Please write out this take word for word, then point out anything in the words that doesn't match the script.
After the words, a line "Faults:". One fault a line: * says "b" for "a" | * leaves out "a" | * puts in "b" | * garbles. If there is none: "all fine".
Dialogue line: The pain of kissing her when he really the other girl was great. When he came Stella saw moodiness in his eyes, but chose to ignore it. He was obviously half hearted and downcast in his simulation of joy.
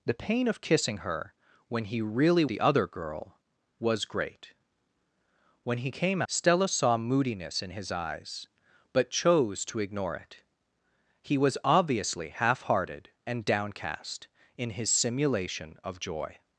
The pain of kissing her when he really the other girl was great. When he came Stella saw moodiness in his eyes, but chose to ignore it. He was obviously half hearted and downcast in his simulation of joy.
Faults:
all fine